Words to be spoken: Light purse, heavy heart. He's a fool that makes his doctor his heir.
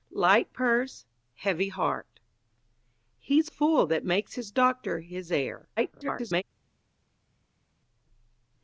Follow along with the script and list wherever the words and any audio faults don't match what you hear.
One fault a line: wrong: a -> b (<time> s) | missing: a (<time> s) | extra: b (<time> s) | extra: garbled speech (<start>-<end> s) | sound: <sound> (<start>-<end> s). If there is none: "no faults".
missing: a (3.5 s)
extra: garbled speech (5.8-6.4 s)